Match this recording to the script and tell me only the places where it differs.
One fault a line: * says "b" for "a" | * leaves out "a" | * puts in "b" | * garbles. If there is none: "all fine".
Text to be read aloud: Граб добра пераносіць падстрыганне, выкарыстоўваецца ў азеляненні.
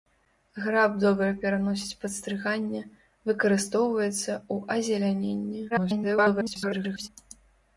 * garbles